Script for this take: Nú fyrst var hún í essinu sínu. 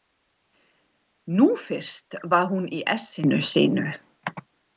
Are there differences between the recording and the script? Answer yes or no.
no